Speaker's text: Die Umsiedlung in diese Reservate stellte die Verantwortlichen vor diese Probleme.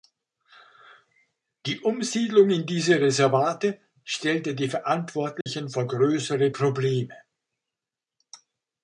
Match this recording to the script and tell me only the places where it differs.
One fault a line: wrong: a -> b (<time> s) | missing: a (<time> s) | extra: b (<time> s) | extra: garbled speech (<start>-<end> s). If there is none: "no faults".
wrong: diese -> größere (5.8 s)